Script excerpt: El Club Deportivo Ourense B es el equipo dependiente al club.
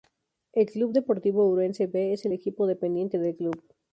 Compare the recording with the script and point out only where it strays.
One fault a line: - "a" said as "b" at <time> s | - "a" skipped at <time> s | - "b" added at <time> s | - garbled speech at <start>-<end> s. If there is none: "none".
- "al" said as "del" at 3.2 s